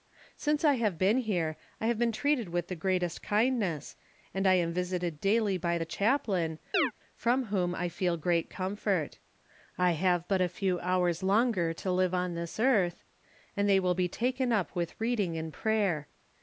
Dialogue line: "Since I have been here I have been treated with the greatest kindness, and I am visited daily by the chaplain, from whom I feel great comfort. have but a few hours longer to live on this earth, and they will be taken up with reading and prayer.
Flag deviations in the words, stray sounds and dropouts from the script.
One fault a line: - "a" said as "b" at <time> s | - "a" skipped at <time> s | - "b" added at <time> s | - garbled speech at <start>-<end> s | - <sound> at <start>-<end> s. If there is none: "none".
- chirp at 6.7-6.9 s
- "I" added at 9.8 s